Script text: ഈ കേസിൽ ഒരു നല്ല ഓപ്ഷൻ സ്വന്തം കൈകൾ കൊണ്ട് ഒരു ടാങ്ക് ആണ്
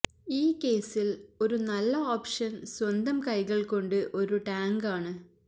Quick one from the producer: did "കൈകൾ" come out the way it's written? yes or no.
yes